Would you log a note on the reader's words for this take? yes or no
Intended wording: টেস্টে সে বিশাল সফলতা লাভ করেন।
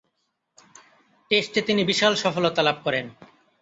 yes